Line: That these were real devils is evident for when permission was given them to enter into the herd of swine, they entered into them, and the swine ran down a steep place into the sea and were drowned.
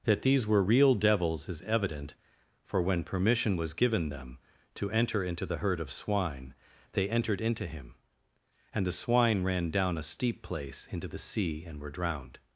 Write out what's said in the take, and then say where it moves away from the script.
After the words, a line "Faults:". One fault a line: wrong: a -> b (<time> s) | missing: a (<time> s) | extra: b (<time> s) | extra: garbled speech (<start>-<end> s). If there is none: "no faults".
That these were real devils is evident for when permission was given them to enter into the herd of swine, they entered into him, and the swine ran down a steep place into the sea and were drowned.
Faults:
wrong: them -> him (7.7 s)